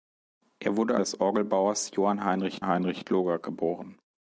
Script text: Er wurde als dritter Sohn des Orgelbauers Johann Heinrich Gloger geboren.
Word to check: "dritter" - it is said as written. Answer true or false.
false